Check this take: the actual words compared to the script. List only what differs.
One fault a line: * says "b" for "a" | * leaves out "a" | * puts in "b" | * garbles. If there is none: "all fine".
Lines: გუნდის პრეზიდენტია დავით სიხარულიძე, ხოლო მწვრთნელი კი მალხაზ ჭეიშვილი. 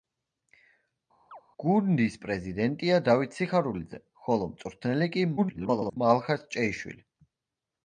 * garbles